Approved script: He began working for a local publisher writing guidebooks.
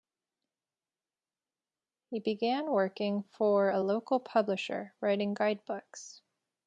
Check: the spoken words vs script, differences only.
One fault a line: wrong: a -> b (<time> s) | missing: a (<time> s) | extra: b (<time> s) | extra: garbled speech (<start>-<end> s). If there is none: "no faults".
no faults